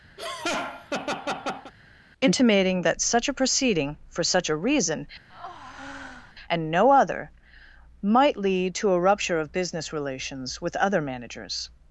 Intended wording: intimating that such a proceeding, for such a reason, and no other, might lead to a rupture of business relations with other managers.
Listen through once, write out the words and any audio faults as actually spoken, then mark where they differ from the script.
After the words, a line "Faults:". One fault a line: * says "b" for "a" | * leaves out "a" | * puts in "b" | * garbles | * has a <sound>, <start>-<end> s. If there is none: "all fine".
intimating that such a proceeding, for such a reason, and no other, might lead to a rupture of business relations with other managers.
Faults:
* has a laugh, 0.2-1.7 s
* has a breath, 5.3-6.3 s